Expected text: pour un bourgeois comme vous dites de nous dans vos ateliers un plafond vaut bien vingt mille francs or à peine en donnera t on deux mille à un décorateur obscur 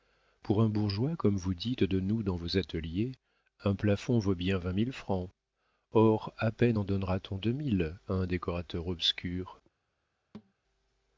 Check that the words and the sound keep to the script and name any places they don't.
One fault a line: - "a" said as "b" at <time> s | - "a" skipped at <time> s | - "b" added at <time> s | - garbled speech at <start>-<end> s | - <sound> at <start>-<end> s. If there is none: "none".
- thud at 10.3-10.5 s